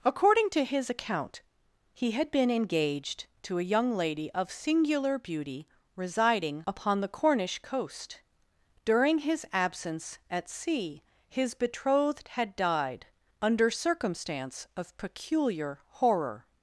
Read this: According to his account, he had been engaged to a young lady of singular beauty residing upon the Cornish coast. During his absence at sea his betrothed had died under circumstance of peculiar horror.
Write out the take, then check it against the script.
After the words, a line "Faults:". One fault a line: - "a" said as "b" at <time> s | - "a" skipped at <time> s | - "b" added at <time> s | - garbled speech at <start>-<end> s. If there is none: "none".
According to his account, he had been engaged to a young lady of singular beauty residing upon the Cornish coast. During his absence at sea his betrothed had died under circumstance of peculiar horror.
Faults:
none